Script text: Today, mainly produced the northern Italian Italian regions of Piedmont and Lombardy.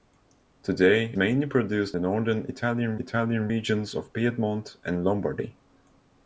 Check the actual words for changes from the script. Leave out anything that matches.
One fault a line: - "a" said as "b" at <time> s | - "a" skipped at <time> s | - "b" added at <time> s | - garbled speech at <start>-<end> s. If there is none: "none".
none